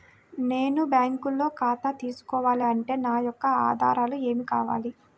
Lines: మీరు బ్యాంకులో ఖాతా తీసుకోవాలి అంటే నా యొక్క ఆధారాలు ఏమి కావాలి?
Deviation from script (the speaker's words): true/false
true